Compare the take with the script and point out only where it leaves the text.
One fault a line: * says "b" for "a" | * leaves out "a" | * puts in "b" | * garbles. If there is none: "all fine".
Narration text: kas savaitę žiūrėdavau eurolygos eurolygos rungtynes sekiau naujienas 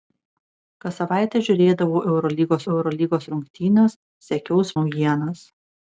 all fine